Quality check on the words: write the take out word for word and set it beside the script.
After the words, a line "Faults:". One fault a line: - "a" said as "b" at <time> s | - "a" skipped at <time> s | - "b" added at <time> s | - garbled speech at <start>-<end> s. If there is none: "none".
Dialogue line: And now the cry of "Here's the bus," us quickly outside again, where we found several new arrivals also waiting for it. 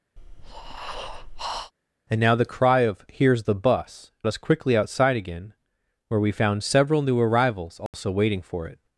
And now the cry of "Here's the bus," us quickly outside again, where we found several new arrivals also waiting for it.
Faults:
none